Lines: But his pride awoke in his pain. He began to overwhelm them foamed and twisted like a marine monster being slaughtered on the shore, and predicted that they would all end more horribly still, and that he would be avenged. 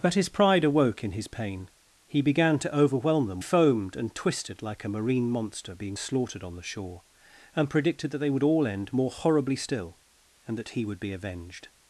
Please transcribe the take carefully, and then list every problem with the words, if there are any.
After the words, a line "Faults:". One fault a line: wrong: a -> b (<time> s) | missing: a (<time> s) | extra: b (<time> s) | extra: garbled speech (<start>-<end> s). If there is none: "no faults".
But his pride awoke in his pain. He began to overwhelm them foamed and twisted like a marine monster being slaughtered on the shore, and predicted that they would all end more horribly still, and that he would be avenged.
Faults:
no faults